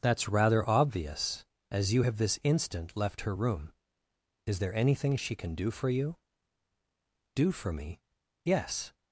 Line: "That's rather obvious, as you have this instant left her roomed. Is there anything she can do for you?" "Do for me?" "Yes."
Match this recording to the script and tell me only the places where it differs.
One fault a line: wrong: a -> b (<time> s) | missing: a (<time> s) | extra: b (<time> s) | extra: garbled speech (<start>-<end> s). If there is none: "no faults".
wrong: roomed -> room (3.3 s)